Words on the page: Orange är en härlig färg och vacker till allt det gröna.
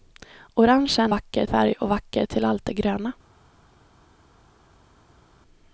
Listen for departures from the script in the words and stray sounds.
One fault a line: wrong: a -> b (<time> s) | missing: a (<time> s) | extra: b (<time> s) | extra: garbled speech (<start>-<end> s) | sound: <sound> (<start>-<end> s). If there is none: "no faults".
wrong: härlig -> vacker (1.1 s)